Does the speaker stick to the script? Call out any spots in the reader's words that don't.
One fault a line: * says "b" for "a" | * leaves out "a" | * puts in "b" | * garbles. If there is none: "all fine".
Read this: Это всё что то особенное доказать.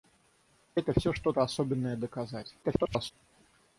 * garbles